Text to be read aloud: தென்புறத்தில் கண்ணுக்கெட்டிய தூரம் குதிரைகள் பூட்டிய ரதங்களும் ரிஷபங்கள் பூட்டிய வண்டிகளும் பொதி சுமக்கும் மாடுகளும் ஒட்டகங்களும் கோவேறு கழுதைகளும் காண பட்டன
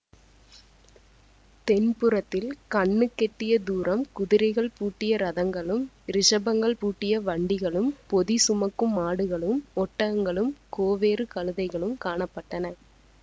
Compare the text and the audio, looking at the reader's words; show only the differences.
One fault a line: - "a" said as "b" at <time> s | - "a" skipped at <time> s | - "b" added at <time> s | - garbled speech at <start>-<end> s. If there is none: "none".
none